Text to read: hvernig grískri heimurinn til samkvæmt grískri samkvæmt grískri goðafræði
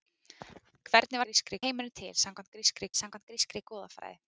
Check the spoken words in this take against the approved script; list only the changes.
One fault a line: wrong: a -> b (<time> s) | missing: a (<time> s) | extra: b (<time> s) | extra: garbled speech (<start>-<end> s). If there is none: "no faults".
no faults